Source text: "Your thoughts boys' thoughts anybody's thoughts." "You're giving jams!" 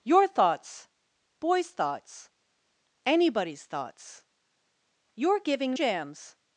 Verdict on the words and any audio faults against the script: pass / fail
pass